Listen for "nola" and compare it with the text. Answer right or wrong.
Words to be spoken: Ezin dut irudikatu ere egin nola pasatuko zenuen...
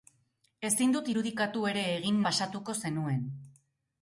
wrong